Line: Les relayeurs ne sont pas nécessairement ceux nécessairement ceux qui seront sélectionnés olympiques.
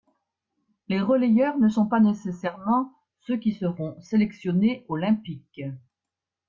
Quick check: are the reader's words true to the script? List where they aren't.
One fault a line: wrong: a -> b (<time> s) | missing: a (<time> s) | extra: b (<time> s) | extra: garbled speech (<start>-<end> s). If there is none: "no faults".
missing: nécessairement ceux (3.4 s)